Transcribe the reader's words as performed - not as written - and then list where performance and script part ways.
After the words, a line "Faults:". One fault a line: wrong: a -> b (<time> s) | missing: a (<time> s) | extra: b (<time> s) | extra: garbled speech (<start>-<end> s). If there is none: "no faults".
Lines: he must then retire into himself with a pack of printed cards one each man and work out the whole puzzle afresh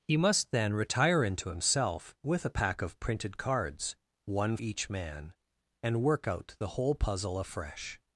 he must then retire into himself with a pack of printed cards one each man and work out the whole puzzle afresh
Faults:
no faults